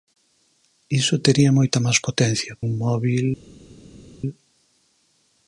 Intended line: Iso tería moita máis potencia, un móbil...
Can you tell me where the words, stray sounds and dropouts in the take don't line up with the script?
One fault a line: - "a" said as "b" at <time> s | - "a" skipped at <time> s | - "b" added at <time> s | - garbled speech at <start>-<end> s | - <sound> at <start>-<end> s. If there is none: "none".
none